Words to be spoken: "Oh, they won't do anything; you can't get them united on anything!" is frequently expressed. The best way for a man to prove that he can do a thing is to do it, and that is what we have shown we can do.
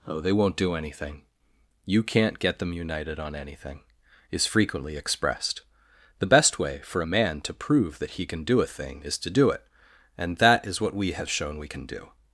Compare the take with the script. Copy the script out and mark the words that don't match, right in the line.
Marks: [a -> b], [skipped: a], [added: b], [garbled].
"Oh, they won't do anything; you can't get them united on anything!" is frequently expressed. The best way for a man to prove that he can do a thing is to do it, and that is what we have shown we can do.